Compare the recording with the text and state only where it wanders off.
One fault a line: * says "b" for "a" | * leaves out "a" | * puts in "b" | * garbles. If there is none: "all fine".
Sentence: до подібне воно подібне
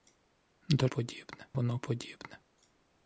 all fine